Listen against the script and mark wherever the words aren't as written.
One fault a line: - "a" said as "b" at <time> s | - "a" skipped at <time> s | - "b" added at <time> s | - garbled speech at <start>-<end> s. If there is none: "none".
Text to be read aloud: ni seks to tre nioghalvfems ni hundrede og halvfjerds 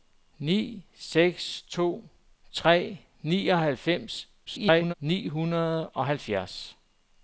- garbled speech at 4.5-4.9 s